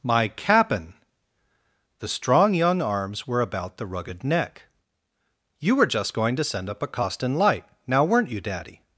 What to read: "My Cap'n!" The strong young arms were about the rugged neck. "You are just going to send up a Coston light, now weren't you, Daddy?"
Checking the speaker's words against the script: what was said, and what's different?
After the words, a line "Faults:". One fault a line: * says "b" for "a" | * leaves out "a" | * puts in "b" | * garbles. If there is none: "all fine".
"My Cap'n!" The strong young arms were about the rugged neck. "You were just going to send up a Coston light, now weren't you, Daddy?"
Faults:
* says "were" for "are"